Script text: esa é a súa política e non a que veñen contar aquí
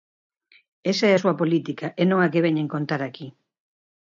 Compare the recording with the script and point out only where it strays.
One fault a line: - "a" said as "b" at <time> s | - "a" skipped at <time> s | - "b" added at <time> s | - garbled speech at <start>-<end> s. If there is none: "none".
none